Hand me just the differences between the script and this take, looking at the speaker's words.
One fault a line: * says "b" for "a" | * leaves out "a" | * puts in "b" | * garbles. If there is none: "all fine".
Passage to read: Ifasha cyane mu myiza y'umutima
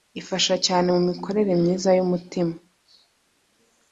* puts in "mikorere"